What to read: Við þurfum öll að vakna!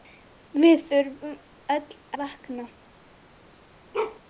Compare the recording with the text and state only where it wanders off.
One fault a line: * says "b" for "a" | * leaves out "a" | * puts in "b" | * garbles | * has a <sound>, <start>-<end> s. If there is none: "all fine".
* leaves out "að"
* has a bark, 3.9-4.2 s